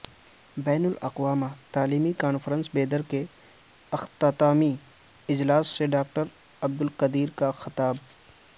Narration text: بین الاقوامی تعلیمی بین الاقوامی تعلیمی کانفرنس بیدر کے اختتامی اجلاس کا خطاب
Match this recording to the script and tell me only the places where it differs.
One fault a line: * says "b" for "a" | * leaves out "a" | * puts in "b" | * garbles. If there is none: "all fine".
* leaves out "بین الاقوامی تعلیمی"
* puts in "سے ڈاکٹر عبدالقدیر"